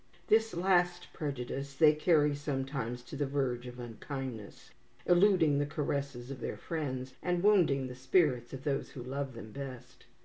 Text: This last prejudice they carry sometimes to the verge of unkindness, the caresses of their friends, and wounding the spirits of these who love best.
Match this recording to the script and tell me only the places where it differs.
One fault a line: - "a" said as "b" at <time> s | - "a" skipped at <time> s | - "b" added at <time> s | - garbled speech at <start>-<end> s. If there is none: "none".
- "eluding" added at 5.0 s
- "these" said as "those" at 8.6 s
- "them" added at 9.3 s